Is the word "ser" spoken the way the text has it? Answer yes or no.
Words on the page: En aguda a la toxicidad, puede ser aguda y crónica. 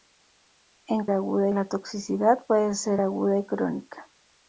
yes